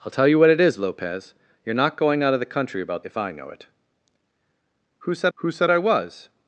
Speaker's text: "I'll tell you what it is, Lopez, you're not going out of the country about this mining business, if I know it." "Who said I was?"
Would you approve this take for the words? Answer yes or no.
no